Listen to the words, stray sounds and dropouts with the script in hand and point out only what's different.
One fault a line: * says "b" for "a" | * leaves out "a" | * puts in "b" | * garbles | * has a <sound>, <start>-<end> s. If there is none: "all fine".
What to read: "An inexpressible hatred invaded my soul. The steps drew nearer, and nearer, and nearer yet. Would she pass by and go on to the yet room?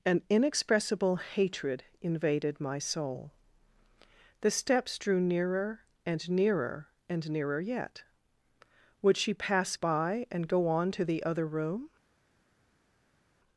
* says "other" for "yet"